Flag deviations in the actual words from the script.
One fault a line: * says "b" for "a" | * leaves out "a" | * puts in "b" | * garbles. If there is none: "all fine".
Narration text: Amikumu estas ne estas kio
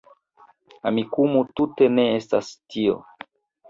* says "tute" for "estas"
* says "tio" for "kio"